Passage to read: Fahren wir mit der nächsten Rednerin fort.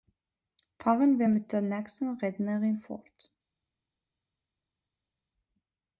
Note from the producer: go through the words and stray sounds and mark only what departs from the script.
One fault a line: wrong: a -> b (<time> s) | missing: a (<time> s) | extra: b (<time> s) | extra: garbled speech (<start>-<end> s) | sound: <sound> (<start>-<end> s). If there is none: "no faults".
no faults